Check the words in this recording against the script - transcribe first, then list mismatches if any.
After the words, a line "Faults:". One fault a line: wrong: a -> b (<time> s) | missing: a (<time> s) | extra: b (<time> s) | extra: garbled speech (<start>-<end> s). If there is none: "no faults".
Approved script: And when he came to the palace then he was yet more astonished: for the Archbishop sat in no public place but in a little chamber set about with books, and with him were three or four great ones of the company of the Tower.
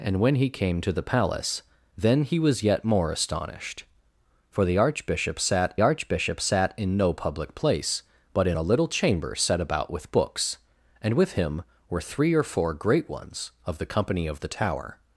And when he came to the palace then he was yet more astonished: for the Archbishop sat Archbishop sat in no public place but in a little chamber set about with books, and with him were three or four great ones of the company of the Tower.
Faults:
extra: Archbishop sat (5.8 s)